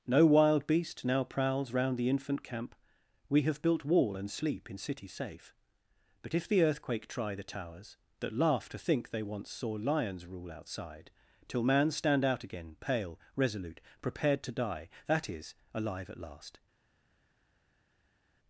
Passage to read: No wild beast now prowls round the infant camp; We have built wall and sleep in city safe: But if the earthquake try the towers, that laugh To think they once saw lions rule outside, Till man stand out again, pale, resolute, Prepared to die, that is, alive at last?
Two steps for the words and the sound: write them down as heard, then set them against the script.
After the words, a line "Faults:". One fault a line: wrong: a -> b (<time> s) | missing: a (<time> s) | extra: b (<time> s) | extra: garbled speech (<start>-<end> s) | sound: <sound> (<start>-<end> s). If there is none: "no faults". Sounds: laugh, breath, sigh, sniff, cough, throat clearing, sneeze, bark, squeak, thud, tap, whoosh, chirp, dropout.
No wild beast now prowls round the infant camp; We have built wall and sleep in city safe: But if the earthquake try the towers, that laugh To think they once saw lions rule outside, Till man stand out again, pale, resolute, Prepared to die, that is, alive at last?
Faults:
no faults